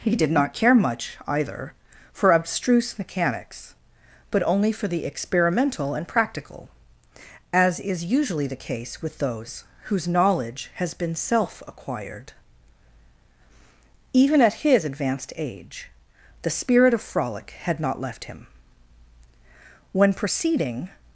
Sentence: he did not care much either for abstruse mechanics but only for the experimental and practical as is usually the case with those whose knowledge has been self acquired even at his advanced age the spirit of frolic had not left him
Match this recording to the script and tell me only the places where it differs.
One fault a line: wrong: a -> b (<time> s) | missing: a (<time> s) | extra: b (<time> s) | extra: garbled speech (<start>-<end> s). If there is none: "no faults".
extra: when proceeding (19.9 s)